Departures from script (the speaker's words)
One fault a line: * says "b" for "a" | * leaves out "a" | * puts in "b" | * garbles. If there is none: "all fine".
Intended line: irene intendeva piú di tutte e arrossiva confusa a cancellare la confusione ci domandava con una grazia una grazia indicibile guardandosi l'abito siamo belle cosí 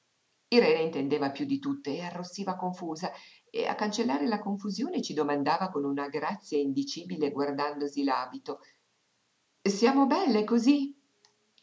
* puts in "e"
* leaves out "una grazia"